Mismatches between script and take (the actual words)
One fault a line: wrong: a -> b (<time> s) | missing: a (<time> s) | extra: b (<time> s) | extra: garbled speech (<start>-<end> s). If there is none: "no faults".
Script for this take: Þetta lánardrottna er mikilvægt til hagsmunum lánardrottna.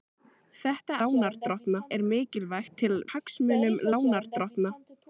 no faults